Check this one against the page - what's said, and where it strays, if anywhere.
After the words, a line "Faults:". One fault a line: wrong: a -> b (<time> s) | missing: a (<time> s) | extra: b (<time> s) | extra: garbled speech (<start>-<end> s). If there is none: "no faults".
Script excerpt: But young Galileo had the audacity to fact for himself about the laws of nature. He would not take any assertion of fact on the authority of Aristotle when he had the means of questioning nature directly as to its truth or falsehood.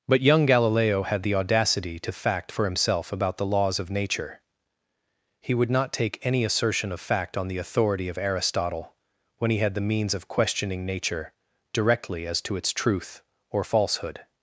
But young Galileo had the audacity to fact for himself about the laws of nature. He would not take any assertion of fact on the authority of Aristotle when he had the means of questioning nature directly as to its truth or falsehood.
Faults:
no faults